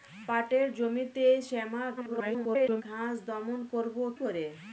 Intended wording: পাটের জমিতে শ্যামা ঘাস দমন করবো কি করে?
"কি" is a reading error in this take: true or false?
true